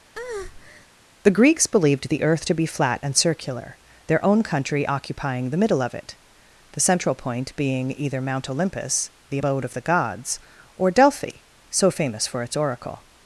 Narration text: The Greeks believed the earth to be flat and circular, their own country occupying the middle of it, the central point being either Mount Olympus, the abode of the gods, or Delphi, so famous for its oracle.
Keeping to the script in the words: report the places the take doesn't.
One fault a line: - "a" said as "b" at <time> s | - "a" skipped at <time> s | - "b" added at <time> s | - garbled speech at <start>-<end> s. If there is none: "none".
none